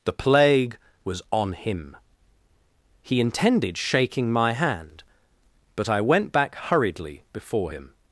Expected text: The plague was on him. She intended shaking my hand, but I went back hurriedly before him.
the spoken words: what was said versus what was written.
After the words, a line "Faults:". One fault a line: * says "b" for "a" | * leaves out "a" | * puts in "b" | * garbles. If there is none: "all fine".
The plague was on him. He intended shaking my hand, but I went back hurriedly before him.
Faults:
* says "He" for "She"